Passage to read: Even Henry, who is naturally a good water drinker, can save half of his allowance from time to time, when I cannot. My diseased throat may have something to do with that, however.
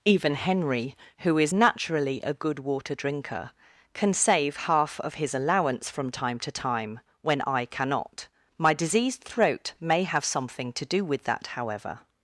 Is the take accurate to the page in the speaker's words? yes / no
yes